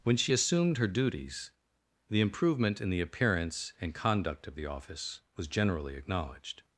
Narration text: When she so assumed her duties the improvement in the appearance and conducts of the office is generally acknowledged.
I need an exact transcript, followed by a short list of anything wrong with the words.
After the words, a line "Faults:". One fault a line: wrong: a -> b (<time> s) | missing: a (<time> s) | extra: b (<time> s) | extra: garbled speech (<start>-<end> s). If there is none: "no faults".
When she assumed her duties the improvement in the appearance and conduct of the office was generally acknowledged.
Faults:
missing: so (0.3 s)
wrong: conducts -> conduct (3.9 s)
wrong: is -> was (5.4 s)